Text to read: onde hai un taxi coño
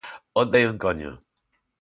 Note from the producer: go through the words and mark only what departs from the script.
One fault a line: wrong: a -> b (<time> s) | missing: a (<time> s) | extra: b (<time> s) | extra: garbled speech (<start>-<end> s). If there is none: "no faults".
missing: taxi (0.8 s)